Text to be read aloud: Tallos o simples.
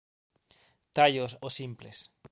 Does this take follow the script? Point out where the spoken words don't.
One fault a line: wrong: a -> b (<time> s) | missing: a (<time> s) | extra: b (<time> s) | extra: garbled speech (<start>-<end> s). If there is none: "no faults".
no faults